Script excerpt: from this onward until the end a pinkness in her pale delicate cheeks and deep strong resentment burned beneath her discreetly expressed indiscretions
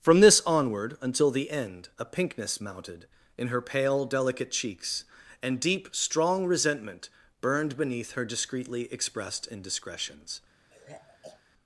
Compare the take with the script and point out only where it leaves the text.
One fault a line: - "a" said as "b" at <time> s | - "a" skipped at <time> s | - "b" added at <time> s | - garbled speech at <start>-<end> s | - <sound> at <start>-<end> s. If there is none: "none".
- "mounted" added at 2.6 s
- sigh at 10.7-11.4 s